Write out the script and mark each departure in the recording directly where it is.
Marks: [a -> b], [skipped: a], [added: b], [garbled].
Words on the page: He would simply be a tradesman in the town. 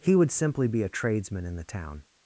He would simply be a tradesman in the town.